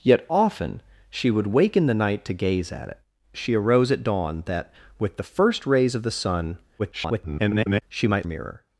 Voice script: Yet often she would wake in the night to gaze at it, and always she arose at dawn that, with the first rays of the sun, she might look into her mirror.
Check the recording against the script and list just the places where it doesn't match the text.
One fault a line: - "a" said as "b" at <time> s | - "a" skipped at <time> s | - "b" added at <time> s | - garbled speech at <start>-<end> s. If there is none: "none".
- "and always" skipped at 3.0 s
- garbled speech at 6.8-7.8 s
- "look into her" skipped at 8.3 s